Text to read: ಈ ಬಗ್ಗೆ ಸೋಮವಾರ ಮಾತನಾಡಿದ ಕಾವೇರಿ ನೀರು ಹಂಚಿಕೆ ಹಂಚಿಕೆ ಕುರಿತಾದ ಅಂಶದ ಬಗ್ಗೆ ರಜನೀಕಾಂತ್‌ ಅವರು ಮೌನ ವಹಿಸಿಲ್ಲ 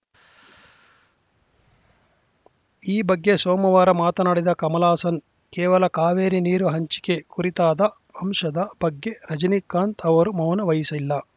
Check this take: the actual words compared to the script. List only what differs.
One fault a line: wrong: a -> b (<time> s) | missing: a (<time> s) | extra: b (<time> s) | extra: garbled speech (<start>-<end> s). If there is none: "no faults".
extra: ಕಮಲ್ ಹಾಸನ್ ಕೇವಲ (4.5 s)
missing: ಹಂಚಿಕೆ (7.2 s)